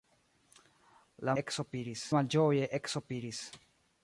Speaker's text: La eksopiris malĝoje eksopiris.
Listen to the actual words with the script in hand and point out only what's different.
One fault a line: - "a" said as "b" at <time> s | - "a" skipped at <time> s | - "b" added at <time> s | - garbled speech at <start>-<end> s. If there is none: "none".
none